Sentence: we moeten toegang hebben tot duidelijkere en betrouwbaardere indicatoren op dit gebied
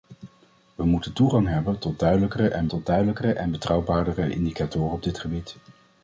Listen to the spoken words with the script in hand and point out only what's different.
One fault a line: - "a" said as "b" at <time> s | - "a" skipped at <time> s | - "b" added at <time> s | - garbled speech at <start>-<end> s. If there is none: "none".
- "tot duidelijkere en" added at 2.7 s